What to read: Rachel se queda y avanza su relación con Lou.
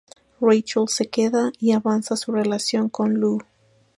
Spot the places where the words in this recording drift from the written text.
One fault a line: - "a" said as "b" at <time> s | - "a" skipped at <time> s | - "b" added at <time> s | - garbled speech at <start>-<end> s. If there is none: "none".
none